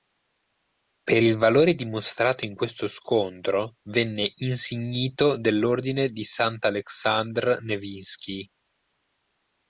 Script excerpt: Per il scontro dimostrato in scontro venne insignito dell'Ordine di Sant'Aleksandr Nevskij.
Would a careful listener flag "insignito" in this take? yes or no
no